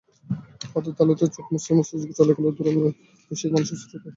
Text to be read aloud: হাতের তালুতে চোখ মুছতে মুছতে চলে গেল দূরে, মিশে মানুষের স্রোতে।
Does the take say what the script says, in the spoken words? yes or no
yes